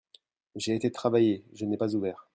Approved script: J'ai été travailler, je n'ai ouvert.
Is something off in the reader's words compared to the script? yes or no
yes